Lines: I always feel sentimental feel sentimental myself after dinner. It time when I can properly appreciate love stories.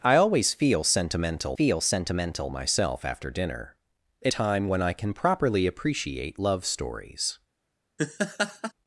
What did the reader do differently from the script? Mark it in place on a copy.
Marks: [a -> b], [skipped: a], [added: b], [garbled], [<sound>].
I always feel sentimental feel sentimental myself after dinner. It time when I can properly appreciate love stories. [laugh]